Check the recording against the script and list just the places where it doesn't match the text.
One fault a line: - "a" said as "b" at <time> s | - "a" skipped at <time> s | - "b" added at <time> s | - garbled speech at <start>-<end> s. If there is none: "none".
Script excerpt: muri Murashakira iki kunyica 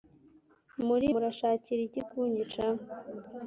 none